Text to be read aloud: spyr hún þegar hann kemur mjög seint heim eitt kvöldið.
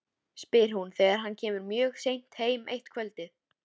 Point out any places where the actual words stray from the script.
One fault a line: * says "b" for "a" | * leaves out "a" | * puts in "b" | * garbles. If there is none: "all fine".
all fine